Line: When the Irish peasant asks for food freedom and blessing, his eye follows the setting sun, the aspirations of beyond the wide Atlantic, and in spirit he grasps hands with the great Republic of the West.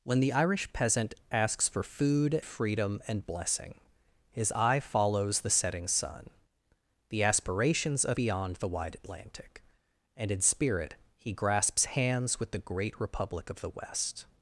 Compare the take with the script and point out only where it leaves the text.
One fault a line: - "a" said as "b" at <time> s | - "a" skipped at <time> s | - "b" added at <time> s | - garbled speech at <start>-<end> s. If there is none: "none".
none